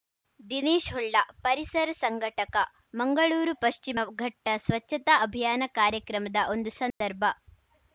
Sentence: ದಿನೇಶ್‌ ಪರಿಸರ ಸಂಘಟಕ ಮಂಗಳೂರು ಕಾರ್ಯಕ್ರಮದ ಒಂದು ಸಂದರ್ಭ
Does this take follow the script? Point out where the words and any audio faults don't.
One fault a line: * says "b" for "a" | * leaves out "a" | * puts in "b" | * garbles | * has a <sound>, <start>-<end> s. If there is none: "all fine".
* puts in "ಹೊಳ್ಳ"
* puts in "ಪಶ್ಚಿಮ ಘಟ್ಟಸ್ವಚ್ಛತಾ ಅಭಿಯಾನ"
* has a dropout, 6.9-7.0 s